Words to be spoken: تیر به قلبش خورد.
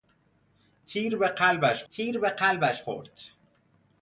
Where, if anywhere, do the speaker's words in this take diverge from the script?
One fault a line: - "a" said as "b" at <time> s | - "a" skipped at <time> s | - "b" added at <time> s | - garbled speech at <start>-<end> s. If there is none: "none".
- "تیر به قلبش" added at 1.9 s